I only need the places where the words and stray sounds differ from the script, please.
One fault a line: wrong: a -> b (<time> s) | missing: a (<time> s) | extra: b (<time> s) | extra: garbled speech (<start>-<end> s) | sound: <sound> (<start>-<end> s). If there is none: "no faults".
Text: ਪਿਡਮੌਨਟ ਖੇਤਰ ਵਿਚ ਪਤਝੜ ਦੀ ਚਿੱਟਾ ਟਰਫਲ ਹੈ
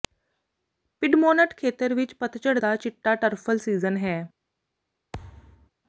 wrong: ਦੀ -> ਦਾ (2.5 s)
extra: ਸੀਜ਼ਨ (3.6 s)
sound: thud (5.1-5.7 s)